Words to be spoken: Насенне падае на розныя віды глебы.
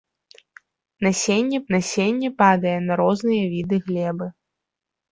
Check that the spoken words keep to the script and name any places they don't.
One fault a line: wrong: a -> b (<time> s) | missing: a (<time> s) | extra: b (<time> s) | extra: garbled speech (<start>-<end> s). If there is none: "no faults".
extra: насенне (1.8 s)